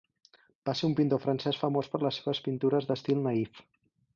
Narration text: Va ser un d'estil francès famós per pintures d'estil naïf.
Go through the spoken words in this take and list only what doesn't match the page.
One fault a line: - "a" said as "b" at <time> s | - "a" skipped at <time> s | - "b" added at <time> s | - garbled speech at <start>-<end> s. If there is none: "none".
- "d'estil" said as "pintor" at 1.0 s
- "les seves" added at 2.1 s